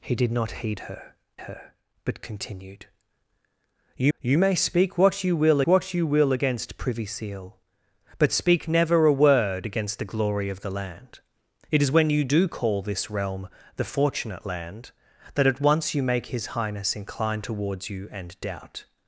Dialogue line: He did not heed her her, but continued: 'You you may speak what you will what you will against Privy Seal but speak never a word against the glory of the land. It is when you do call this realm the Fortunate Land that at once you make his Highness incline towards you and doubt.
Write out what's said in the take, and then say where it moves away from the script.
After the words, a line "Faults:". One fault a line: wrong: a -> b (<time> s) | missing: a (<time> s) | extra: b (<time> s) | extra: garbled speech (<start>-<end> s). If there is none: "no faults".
He did not heed her her, but continued: 'You you may speak what you will what you will against Privy Seal but speak never a word against the glory of the land. It is when you do call this realm the Fortunate Land that at once you make his Highness incline towards you and doubt.
Faults:
no faults